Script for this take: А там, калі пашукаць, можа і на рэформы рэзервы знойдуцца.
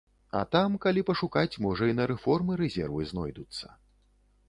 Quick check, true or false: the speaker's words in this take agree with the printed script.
true